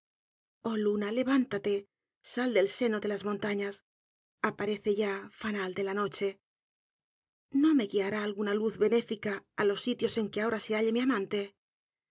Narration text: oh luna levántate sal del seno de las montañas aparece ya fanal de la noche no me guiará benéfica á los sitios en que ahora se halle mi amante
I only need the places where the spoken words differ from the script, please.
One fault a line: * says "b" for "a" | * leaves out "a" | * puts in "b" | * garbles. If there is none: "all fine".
* puts in "alguna luz"